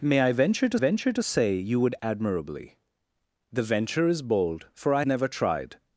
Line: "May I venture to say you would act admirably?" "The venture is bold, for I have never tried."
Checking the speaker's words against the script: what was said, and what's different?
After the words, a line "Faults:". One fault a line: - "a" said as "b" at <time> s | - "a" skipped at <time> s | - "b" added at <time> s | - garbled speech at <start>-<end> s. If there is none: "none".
"May I venture to venture to say you would admirably?" "The venture is bold, for I never tried."
Faults:
- "venture to" added at 0.7 s
- "act" skipped at 1.9 s
- "have" skipped at 5.0 s